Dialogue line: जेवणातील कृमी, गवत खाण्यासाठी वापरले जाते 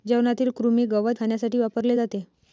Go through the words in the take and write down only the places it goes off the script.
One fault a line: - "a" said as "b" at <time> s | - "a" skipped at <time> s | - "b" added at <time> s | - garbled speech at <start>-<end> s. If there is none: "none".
none